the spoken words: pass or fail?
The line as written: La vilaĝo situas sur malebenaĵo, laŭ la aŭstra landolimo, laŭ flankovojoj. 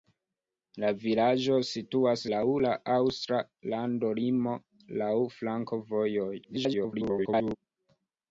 fail